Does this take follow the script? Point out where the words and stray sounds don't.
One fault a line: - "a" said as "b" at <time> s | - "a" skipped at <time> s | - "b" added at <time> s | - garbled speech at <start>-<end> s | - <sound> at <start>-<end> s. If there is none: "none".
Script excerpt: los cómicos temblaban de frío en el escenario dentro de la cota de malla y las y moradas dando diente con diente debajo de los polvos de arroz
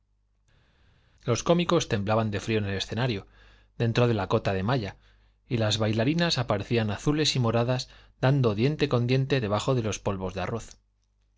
- "bailarinas aparecían azules" added at 5.8 s